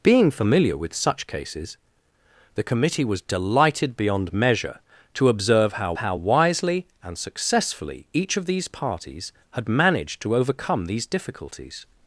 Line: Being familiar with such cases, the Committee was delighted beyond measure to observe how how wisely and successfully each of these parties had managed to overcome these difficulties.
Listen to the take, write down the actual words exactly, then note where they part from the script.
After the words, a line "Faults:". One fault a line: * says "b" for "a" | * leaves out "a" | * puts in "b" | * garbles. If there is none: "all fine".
Being familiar with such cases, the Committee was delighted beyond measure to observe how how wisely and successfully each of these parties had managed to overcome these difficulties.
Faults:
all fine